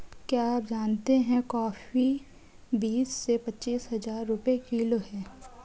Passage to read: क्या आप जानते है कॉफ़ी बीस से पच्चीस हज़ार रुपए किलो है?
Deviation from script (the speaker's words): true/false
false